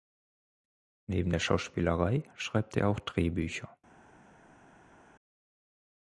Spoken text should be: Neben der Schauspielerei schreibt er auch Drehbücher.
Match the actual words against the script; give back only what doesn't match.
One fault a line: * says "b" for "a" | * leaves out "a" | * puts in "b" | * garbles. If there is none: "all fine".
all fine